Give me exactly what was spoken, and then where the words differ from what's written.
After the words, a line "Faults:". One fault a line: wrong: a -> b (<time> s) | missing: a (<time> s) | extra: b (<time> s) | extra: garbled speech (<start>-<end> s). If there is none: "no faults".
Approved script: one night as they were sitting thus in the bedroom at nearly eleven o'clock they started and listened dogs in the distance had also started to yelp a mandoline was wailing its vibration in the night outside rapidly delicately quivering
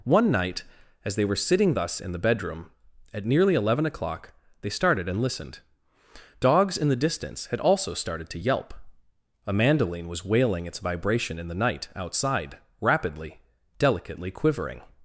one night as they were sitting thus in the bedroom at nearly eleven o'clock they started and listened dogs in the distance had also started to yelp a mandoline was wailing its vibration in the night outside rapidly delicately quivering
Faults:
no faults